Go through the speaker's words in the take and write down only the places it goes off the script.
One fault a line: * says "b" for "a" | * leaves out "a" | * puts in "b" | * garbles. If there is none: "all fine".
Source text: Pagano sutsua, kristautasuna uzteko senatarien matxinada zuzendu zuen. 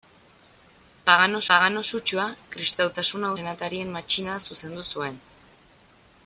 * puts in "pagano"
* leaves out "uzteko"